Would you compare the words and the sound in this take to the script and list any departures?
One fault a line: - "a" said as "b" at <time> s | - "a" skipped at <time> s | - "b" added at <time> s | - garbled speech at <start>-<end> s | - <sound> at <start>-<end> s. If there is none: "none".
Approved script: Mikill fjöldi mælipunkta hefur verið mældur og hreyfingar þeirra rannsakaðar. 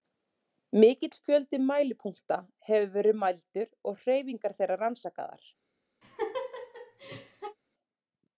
- laugh at 6.0-7.6 s